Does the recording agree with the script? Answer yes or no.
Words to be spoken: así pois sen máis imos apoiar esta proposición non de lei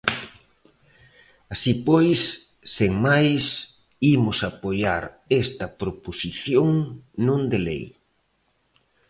yes